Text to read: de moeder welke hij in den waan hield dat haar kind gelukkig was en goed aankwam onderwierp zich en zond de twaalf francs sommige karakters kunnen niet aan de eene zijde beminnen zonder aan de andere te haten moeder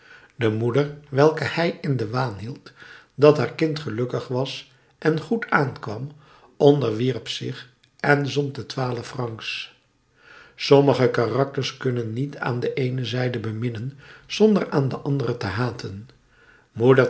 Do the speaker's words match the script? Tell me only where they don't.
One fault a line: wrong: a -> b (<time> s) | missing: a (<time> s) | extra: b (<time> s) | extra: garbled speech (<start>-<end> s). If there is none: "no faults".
no faults